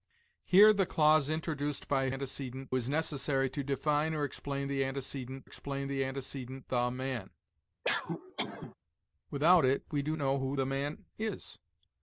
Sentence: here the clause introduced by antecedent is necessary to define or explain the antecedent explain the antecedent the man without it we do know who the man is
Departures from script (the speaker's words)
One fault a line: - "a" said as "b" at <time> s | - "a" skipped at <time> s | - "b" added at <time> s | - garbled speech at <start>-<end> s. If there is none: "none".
none